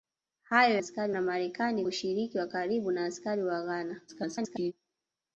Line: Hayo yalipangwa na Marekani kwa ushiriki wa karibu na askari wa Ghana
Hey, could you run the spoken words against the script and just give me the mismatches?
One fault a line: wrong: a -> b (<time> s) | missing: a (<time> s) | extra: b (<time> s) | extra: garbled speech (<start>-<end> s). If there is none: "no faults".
wrong: yalipangwa -> askari (0.8 s)
missing: kwa (1.9 s)
extra: garbled speech (4.1-4.7 s)